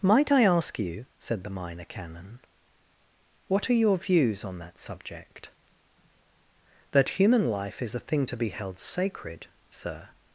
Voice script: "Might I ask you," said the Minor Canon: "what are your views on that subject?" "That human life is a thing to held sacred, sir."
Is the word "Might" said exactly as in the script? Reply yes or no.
yes